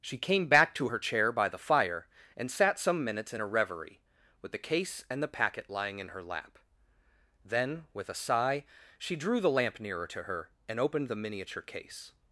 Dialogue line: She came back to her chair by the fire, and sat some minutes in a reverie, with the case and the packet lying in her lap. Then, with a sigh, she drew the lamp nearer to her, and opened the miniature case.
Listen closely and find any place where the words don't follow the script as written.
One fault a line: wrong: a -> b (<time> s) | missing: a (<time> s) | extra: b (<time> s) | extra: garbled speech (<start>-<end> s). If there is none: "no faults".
no faults